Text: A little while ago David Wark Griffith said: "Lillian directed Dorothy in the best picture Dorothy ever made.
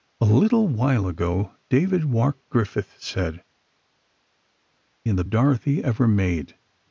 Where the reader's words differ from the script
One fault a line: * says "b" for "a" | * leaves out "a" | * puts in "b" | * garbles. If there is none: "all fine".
* leaves out "Lillian directed Dorothy"
* leaves out "best picture"